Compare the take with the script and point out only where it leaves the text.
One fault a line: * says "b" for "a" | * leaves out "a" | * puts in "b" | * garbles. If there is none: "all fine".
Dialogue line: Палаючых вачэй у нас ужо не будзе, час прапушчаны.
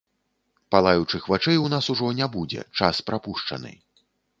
all fine